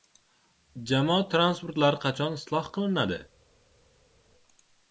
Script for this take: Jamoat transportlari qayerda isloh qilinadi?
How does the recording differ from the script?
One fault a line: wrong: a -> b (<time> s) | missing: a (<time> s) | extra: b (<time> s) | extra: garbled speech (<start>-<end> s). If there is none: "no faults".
wrong: qayerda -> qachon (2.0 s)